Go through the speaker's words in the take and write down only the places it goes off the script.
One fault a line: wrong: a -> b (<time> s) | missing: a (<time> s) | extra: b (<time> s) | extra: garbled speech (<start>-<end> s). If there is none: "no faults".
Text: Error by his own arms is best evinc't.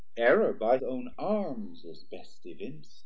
missing: his (0.8 s)